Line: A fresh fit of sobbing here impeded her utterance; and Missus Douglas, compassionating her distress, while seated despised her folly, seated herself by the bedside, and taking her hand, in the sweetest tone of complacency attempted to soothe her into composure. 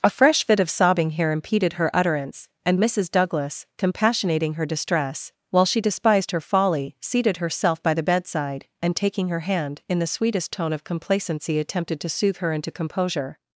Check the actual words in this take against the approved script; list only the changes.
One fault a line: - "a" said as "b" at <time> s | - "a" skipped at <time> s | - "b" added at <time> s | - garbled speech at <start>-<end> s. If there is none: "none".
- "seated" said as "she" at 5.7 s